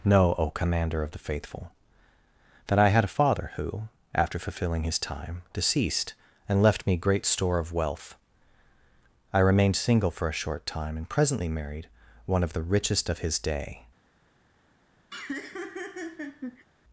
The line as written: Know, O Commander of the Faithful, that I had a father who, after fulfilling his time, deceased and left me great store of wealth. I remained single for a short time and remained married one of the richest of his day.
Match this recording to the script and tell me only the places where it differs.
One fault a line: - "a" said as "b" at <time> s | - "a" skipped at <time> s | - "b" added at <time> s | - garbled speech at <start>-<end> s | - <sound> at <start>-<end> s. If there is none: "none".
- "remained" said as "presently" at 11.1 s
- laugh at 15.1-16.7 s